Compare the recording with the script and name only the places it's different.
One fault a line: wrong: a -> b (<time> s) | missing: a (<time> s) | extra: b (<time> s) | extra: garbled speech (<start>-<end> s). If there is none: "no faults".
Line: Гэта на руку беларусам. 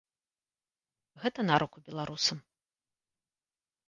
no faults